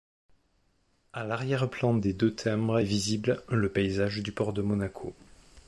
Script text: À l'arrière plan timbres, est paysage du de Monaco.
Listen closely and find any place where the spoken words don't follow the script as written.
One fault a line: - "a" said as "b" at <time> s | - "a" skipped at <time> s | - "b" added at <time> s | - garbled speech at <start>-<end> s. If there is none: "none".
- "des deux" added at 1.9 s
- "visible le" added at 2.8 s
- "port" added at 4.3 s